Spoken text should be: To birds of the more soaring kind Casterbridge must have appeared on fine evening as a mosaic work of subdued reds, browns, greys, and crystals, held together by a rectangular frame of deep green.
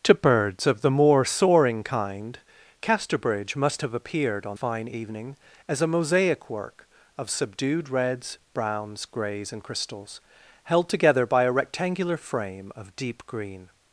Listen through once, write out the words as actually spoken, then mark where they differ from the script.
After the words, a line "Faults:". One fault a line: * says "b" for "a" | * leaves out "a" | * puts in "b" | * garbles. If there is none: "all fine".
To birds of the more soaring kind Casterbridge must have appeared on fine evening as a mosaic work of subdued reds, browns, greys, and crystals, held together by a rectangular frame of deep green.
Faults:
all fine